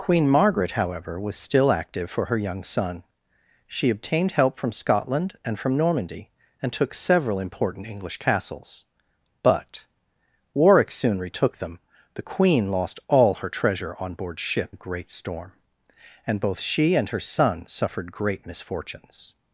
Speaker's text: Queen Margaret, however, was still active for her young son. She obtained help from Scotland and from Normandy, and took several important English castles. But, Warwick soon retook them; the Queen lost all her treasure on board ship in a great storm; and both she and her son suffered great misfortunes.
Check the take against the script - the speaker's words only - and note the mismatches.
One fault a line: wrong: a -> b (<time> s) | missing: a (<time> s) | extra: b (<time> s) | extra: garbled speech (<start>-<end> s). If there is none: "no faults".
missing: in (14.8 s)